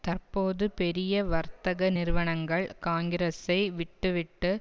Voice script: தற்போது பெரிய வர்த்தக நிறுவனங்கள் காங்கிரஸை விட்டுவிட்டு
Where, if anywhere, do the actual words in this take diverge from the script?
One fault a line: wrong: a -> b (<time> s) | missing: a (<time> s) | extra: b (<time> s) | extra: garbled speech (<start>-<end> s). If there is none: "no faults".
no faults